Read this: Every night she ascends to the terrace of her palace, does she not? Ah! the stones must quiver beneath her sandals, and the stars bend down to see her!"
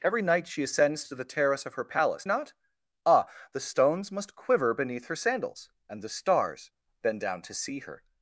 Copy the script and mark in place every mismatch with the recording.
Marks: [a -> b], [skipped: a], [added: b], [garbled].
Every night she ascends to the terrace of her palace, [skipped: does she] not? Ah! the stones must quiver beneath her sandals, and the stars bend down to see her!"